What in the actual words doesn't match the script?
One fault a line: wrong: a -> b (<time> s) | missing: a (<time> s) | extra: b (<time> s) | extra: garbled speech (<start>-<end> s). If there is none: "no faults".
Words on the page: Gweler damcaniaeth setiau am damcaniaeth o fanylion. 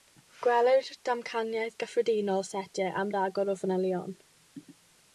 extra: gyffredinol (1.8 s)
wrong: damcaniaeth -> ragor (3.2 s)